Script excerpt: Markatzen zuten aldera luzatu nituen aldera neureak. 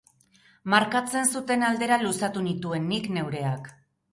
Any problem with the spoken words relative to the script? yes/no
yes